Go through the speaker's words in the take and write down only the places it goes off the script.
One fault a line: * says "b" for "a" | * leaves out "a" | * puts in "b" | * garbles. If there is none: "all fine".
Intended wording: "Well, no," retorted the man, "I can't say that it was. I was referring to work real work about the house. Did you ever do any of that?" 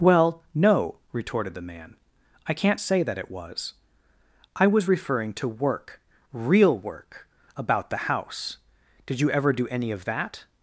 all fine